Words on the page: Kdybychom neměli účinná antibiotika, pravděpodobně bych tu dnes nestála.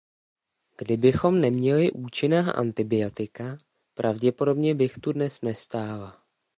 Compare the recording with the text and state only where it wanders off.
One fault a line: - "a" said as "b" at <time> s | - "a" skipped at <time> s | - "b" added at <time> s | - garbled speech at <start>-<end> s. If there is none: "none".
none